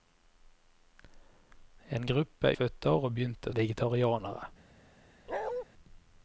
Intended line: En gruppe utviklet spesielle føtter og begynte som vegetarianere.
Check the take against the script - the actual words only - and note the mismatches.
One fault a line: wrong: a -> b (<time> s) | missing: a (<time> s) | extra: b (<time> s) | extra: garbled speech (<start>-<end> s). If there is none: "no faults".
missing: utviklet spesielle (2.5 s)
missing: som (3.5 s)